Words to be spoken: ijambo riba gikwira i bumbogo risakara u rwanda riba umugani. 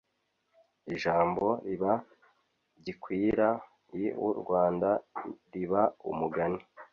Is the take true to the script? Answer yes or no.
no